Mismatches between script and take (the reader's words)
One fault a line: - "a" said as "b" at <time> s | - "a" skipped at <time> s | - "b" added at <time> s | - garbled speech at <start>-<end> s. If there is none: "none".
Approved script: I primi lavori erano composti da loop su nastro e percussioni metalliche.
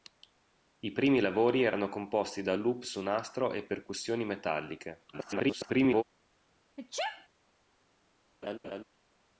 - garbled speech at 5.1-6.0 s